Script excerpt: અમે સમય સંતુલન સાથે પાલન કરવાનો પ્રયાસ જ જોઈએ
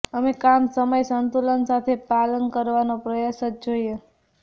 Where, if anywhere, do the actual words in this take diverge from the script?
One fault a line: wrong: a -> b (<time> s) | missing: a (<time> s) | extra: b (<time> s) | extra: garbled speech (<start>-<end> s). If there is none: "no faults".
extra: કામ (0.3 s)